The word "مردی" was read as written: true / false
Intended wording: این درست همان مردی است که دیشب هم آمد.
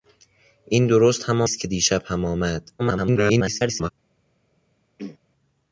false